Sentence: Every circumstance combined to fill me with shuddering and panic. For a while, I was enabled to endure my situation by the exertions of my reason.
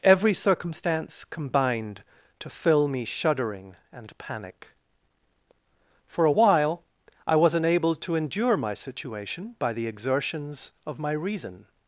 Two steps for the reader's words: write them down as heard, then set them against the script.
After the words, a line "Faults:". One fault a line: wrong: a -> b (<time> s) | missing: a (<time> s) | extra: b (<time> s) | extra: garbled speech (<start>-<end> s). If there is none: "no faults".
Every circumstance combined to fill me shuddering and panic. For a while, I was enabled to endure my situation by the exertions of my reason.
Faults:
missing: with (3.0 s)